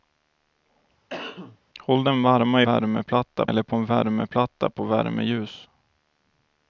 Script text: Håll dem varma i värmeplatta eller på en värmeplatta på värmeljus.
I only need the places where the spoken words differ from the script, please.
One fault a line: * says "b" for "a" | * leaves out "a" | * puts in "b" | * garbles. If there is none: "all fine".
all fine